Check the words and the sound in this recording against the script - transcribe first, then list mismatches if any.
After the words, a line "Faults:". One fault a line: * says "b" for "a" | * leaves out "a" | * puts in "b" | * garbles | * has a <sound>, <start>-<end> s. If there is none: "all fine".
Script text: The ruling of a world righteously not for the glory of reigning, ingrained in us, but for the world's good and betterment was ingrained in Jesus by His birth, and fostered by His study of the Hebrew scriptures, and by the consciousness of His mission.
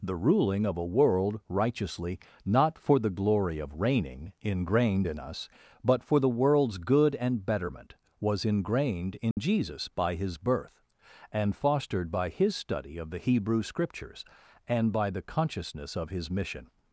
The ruling of a world righteously not for the glory of reigning, ingrained in us, but for the world's good and betterment was ingrained in Jesus by His birth, and fostered by His study of the Hebrew scriptures, and by the consciousness of His mission.
Faults:
* has a dropout, 9.3-9.4 s